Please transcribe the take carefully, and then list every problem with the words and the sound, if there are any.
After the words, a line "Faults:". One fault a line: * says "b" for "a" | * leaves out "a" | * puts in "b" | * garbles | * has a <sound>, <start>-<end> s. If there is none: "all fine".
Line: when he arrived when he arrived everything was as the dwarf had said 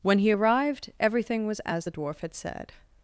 when he arrived everything was as the dwarf had said
Faults:
* leaves out "when he arrived"